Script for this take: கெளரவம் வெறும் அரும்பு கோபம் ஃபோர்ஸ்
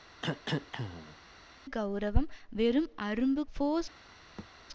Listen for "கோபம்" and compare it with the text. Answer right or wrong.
wrong